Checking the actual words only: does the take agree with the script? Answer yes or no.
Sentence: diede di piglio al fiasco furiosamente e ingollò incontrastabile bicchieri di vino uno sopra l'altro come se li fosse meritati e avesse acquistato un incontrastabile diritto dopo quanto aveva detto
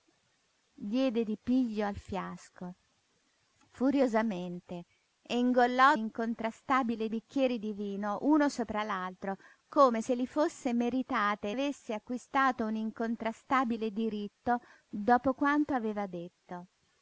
yes